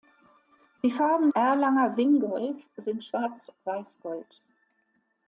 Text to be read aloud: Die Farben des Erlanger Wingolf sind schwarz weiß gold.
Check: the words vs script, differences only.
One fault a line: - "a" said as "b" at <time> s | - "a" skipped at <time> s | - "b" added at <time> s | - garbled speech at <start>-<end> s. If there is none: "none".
- "des" skipped at 1.3 s